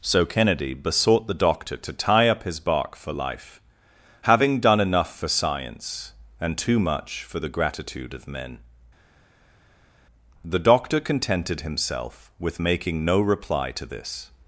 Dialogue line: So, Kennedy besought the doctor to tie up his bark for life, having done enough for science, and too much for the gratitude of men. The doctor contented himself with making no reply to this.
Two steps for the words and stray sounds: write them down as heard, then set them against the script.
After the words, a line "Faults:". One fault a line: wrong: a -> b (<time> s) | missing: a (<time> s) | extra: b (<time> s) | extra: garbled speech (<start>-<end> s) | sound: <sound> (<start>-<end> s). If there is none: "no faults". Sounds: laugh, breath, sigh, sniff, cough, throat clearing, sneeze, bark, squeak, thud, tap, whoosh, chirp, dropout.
So, Kennedy besought the doctor to tie up his bark for life, having done enough for science, and too much for the gratitude of men. The doctor contented himself with making no reply to this.
Faults:
no faults